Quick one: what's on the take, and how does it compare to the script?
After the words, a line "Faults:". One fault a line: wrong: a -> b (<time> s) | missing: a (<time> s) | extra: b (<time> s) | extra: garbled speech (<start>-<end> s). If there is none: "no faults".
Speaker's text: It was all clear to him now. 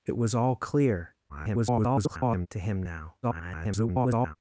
It was all clear [garbled] to him now. [garbled]
Faults:
extra: garbled speech (1.3-2.5 s)
extra: garbled speech (3.2-4.4 s)